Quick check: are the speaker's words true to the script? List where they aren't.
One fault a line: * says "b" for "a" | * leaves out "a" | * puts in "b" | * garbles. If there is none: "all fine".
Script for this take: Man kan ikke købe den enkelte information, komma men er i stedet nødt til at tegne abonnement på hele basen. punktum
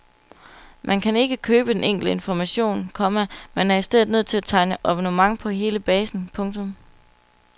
all fine